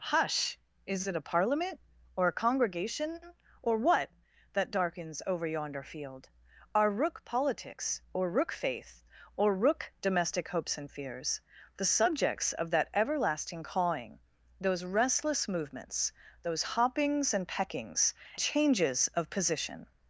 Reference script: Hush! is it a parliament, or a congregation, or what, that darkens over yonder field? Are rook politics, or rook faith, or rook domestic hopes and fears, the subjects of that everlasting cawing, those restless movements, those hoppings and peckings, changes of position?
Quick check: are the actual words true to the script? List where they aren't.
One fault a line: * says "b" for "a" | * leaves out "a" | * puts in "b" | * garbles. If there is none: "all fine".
all fine